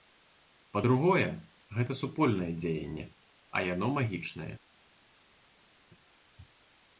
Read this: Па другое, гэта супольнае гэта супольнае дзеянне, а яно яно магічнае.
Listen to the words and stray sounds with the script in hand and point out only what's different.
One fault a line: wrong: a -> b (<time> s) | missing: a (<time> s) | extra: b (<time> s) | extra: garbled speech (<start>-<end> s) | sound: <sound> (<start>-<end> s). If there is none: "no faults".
missing: гэта супольнае (2.5 s)
missing: яно (3.9 s)